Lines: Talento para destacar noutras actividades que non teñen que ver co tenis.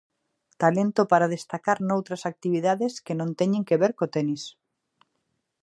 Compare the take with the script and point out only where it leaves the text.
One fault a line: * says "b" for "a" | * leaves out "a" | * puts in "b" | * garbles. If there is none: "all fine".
all fine